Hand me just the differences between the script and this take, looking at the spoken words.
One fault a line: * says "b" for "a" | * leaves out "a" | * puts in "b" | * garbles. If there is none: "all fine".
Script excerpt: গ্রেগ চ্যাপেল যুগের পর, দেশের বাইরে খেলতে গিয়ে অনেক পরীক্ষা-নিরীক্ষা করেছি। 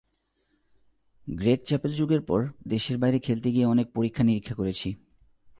all fine